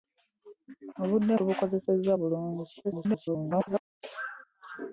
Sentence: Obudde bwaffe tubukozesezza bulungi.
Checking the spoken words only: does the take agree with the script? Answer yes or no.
no